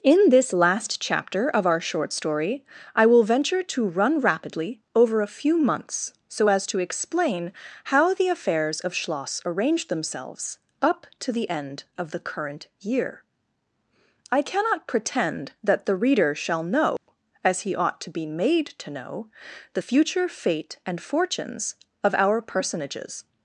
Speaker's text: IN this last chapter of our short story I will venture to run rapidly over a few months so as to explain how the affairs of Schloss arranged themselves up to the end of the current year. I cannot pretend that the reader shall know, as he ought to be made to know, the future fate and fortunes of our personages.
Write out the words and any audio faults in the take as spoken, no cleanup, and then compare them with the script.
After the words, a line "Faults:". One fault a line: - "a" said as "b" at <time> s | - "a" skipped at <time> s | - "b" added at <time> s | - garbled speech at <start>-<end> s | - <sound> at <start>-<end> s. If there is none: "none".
IN this last chapter of our short story I will venture to run rapidly over a few months so as to explain how the affairs of Schloss arranged themselves up to the end of the current year. I cannot pretend that the reader shall know, as he ought to be made to know, the future fate and fortunes of our personages.
Faults:
- dropout at 17.0-17.1 s